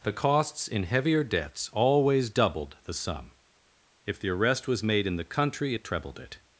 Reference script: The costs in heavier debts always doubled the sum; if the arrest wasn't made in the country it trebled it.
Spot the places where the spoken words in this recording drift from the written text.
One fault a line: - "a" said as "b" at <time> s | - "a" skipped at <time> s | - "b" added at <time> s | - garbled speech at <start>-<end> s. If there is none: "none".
- "wasn't" said as "was" at 4.7 s